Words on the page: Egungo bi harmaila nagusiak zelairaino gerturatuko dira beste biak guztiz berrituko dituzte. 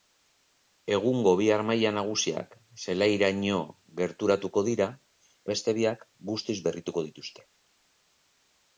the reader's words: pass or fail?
pass